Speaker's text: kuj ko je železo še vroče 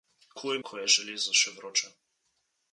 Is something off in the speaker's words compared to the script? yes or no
no